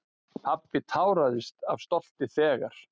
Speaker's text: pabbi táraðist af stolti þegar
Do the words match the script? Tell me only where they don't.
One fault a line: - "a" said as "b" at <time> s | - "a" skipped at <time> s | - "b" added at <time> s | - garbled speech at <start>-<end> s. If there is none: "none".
none